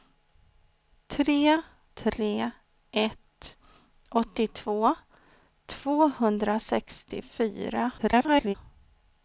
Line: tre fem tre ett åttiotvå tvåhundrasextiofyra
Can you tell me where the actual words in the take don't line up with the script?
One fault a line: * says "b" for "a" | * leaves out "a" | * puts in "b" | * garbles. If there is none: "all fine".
* leaves out "fem"
* garbles